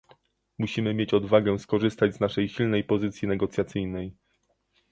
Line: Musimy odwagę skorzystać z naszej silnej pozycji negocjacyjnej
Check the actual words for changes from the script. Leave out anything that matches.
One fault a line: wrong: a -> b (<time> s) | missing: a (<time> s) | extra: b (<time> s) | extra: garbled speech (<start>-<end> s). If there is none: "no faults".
extra: mieć (0.9 s)